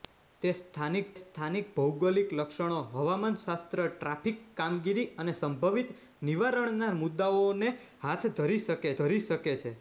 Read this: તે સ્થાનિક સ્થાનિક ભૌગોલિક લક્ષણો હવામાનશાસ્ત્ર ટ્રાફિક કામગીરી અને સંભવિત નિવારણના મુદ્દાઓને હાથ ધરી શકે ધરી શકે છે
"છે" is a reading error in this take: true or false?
false